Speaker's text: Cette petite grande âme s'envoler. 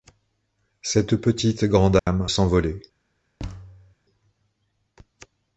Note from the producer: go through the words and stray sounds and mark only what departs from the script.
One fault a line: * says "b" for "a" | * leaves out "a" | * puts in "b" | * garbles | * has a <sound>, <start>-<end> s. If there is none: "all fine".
* has a dropout, 2.0-2.1 s
* has a thud, 3.4-4.0 s